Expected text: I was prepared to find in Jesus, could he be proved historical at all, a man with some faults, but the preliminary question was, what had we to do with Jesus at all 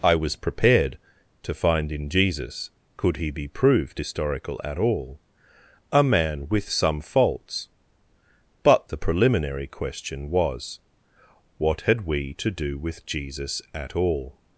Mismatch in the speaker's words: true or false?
false